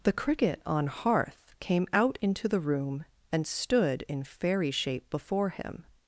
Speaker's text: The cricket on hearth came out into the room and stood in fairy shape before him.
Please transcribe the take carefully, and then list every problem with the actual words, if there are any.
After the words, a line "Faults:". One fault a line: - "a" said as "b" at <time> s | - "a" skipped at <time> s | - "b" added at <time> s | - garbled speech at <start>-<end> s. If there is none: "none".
The cricket on hearth came out into the room and stood in fairy shape before him.
Faults:
none